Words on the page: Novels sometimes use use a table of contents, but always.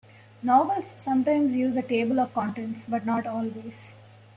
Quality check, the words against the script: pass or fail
fail